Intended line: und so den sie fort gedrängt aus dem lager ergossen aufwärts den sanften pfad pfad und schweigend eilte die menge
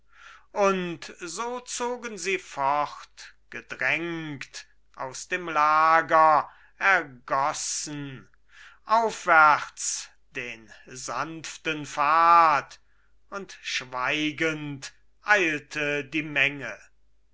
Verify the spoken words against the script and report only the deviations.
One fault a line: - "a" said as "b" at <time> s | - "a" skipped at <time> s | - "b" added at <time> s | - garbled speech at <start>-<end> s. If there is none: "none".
- "den" said as "zogen" at 1.6 s
- "pfad" skipped at 12.8 s